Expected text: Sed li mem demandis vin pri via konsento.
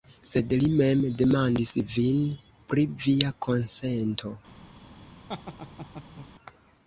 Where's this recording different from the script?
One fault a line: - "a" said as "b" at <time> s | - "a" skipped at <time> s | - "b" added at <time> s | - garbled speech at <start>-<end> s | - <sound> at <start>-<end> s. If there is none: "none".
- laugh at 5.3-6.3 s